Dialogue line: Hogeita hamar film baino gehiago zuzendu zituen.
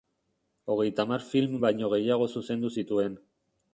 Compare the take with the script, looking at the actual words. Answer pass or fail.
pass